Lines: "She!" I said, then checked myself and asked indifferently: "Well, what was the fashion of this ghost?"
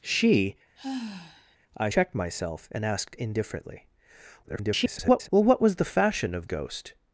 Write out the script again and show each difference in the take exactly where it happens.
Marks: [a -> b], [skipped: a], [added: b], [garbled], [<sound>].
"She!" [sigh] I [skipped: said, then] checked myself and asked indifferently: [garbled] "Well, what was the fashion of [skipped: this] ghost?"